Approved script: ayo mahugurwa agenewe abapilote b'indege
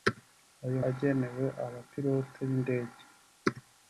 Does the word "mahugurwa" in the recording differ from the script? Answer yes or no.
yes